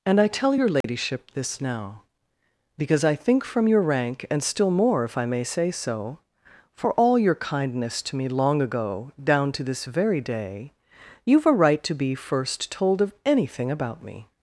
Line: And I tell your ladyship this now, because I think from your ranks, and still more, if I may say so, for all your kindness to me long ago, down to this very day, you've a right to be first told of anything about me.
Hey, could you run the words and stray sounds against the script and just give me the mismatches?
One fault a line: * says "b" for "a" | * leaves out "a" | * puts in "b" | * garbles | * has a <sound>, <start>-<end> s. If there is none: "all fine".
* has a dropout, 0.8-0.8 s
* says "rank" for "ranks"